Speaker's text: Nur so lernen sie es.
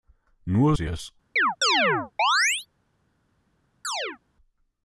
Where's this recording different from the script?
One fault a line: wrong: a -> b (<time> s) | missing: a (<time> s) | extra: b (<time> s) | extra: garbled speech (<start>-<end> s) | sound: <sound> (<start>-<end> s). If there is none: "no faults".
missing: so lernen (0.8 s)
sound: chirp (1.4-2.7 s)
sound: chirp (3.8-4.2 s)